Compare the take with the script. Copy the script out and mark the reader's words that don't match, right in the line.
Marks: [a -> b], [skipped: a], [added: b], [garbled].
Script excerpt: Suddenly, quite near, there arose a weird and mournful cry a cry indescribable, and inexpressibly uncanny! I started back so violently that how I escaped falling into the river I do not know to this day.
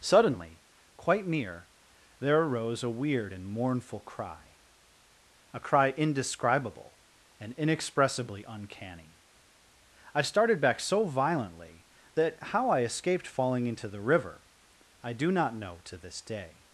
Suddenly, quite near, there arose a weird and mournful cry a cry indescribable, and inexpressibly uncanny! I started back so violently that how I escaped falling into the river I do not know to this day.